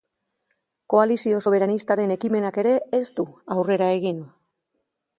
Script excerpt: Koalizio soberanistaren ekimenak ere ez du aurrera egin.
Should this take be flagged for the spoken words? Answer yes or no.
no